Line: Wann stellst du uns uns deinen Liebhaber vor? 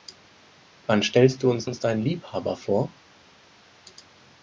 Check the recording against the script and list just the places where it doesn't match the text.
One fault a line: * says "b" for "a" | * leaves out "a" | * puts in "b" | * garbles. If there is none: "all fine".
all fine